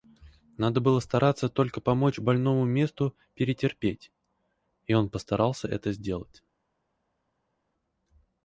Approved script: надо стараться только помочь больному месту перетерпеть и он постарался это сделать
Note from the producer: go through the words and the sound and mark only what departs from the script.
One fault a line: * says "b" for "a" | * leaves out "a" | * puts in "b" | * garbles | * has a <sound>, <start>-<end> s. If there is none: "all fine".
* puts in "было"